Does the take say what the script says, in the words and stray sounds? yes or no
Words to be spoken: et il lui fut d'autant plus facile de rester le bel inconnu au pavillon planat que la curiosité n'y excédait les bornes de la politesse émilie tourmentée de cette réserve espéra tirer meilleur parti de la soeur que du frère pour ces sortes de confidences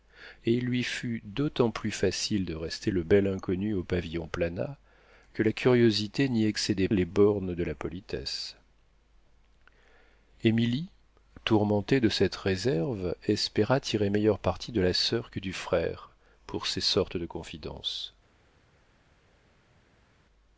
yes